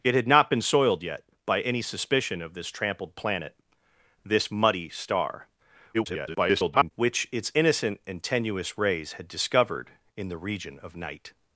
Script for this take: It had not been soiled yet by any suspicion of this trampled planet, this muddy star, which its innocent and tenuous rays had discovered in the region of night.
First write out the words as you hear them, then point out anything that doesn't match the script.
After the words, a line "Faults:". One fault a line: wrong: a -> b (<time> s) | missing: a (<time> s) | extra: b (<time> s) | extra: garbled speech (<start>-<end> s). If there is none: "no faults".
It had not been soiled yet by any suspicion of this trampled planet, this muddy star, [garbled] which its innocent and tenuous rays had discovered in the region of night.
Faults:
extra: garbled speech (5.9-6.9 s)